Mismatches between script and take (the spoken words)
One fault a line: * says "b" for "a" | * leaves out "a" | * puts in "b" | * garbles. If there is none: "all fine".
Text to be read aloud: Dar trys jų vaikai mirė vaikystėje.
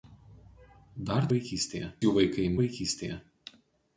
* says "vaikystėje" for "trys"
* leaves out "mirė"